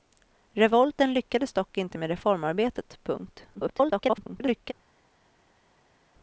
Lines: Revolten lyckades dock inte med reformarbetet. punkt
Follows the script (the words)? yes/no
no